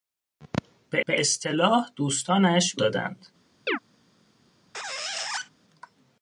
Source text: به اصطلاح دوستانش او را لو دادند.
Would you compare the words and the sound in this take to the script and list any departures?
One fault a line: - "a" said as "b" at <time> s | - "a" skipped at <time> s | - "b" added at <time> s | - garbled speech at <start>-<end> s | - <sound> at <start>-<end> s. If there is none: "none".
- "به" added at 1.0 s
- "او را لو" skipped at 2.8 s
- chirp at 3.7-3.8 s
- squeak at 4.7-5.5 s